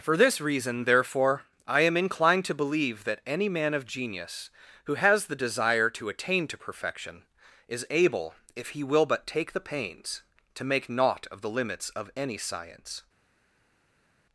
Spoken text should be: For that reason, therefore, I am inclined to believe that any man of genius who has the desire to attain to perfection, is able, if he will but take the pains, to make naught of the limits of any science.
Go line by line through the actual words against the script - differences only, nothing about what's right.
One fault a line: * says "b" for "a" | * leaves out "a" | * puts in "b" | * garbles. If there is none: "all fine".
* says "this" for "that"